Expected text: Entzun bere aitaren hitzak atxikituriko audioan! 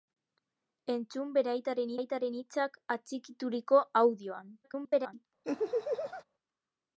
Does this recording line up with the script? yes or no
no